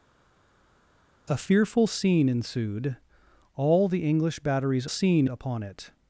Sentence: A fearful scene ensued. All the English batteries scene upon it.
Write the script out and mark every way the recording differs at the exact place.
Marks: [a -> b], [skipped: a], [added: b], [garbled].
A fearful scene ensued. All the English batteries scene upon it.